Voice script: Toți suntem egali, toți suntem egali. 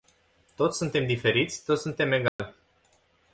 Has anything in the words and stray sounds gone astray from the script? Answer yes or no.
yes